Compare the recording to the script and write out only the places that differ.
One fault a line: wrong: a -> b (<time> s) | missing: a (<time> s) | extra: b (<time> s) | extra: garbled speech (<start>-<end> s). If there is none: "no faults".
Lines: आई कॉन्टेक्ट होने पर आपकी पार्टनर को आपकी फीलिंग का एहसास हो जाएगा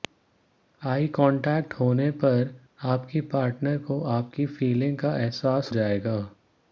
missing: हो (5.7 s)